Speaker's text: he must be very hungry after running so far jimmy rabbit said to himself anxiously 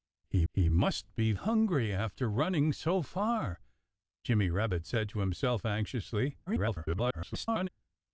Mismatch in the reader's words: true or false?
true